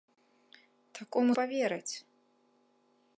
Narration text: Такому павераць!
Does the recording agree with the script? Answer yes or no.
yes